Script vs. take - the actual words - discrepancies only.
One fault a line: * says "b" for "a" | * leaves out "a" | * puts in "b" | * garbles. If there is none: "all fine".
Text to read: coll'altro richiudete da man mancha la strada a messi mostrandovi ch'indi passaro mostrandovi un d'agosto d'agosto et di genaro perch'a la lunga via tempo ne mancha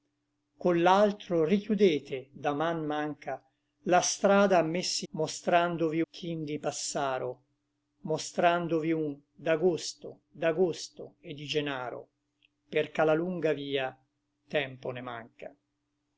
all fine